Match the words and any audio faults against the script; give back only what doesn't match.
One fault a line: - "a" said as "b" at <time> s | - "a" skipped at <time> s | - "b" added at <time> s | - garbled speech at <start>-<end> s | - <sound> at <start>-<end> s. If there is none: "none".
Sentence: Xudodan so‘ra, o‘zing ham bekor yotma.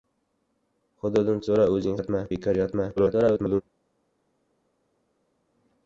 - "ham" said as "yotma" at 2.0 s
- garbled speech at 3.0-3.6 s